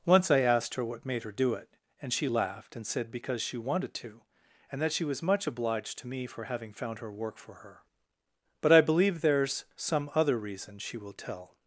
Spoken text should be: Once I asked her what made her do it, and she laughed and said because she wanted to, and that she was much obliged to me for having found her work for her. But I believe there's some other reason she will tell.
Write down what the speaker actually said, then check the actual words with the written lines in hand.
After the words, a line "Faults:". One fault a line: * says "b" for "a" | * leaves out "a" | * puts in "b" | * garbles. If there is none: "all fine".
Once I asked her what made her do it, and she laughed and said because she wanted to, and that she was much obliged to me for having found her work for her. But I believe there's some other reason she will tell.
Faults:
all fine